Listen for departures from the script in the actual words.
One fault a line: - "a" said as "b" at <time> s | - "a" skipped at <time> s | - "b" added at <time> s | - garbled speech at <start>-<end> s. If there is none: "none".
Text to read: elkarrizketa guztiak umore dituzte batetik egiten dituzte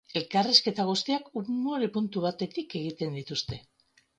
- "dituzte" said as "puntu" at 2.0 s